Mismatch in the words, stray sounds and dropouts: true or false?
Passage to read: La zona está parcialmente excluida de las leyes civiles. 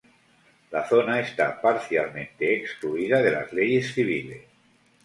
false